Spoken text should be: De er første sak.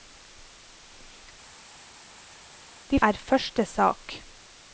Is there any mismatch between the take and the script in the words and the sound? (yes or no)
no